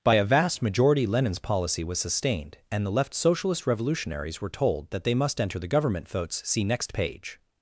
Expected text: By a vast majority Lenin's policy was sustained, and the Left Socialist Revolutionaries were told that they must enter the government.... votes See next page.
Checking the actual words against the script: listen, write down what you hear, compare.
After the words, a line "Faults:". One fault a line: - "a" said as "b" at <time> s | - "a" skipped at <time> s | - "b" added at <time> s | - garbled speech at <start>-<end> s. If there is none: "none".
By a vast majority Lenin's policy was sustained, and the Left Socialist Revolutionaries were told that they must enter the government.... votes See next page.
Faults:
none